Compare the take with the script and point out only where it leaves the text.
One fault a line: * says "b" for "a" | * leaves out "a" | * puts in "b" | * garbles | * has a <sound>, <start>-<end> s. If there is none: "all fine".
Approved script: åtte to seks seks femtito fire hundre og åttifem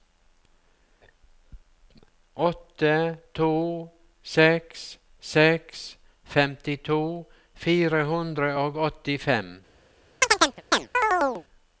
* has a chirp, 10.2-11.4 s